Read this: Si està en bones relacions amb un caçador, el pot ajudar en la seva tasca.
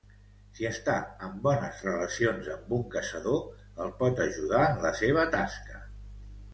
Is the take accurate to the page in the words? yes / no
yes